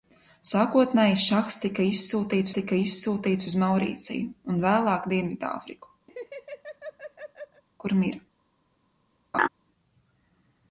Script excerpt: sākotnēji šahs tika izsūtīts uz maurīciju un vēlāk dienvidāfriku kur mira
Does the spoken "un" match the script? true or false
true